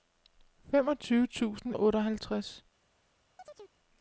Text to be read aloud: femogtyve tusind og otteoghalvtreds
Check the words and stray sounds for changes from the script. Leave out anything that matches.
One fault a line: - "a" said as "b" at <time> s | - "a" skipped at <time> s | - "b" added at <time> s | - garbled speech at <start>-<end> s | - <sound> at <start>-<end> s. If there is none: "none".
- chirp at 3.4-3.8 s